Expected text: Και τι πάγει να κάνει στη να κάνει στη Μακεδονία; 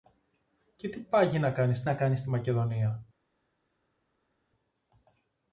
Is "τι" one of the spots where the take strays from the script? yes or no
no